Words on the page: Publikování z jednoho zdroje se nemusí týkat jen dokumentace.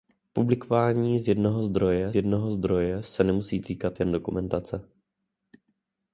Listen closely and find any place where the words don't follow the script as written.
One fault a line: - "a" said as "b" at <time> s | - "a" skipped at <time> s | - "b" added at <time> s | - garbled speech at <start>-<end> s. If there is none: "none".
- "jednoho zdroje" added at 2.1 s